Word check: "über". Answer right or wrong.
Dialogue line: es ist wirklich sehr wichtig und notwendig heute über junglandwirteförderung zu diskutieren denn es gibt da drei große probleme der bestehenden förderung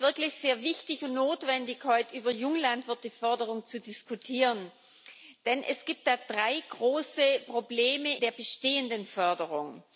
right